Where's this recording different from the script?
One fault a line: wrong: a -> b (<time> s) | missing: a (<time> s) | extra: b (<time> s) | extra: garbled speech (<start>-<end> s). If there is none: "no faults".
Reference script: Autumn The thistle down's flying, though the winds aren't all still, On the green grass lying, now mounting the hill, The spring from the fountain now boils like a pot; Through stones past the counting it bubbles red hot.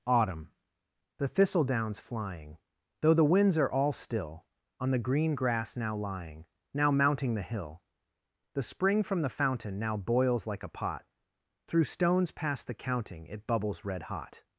wrong: aren't -> are (3.6 s)
extra: now (5.8 s)